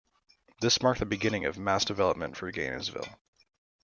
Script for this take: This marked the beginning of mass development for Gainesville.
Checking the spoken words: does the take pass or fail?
pass